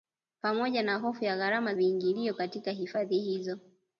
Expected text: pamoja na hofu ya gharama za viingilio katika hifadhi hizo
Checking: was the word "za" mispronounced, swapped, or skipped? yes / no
yes